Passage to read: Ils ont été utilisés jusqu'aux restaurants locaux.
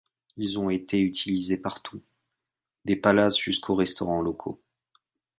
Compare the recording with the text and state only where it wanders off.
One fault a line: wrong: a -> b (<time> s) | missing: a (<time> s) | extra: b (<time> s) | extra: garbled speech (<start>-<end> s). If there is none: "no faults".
extra: partout des palaces (1.6 s)